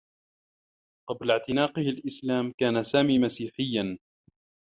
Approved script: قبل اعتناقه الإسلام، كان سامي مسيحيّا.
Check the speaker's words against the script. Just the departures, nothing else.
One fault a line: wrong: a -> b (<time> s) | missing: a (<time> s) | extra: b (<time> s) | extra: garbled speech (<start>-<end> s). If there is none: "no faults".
no faults